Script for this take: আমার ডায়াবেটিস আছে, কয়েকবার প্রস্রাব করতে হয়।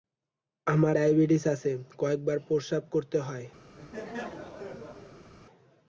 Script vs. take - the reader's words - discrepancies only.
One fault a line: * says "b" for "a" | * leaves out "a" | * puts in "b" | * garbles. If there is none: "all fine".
all fine